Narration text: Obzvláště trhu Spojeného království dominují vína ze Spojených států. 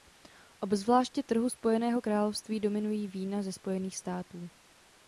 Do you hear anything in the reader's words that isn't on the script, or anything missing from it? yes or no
no